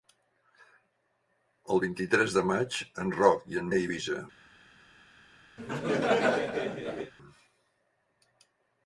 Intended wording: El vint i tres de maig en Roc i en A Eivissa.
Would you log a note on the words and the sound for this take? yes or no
yes